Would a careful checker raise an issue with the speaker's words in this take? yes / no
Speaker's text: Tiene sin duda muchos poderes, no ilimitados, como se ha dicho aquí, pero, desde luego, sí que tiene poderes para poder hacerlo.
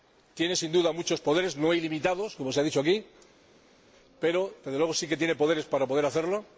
no